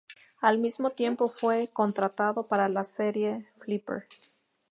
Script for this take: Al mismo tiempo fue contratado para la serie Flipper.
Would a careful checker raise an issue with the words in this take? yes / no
no